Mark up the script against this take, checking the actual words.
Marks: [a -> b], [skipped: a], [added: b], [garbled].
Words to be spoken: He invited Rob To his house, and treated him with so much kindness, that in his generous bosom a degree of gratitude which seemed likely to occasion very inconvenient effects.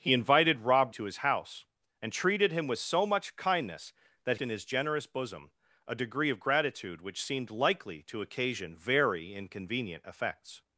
He invited Rob To his house, and treated him with so much kindness, that in his generous bosom a degree of gratitude which seemed likely to occasion very inconvenient effects.